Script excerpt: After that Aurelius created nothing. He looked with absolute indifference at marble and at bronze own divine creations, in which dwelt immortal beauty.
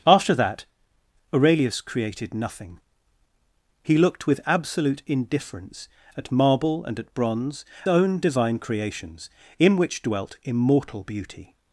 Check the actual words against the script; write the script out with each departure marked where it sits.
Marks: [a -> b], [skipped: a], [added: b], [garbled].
After that Aurelius created nothing. He looked with absolute indifference at marble and at bronze own divine creations, in which dwelt immortal beauty.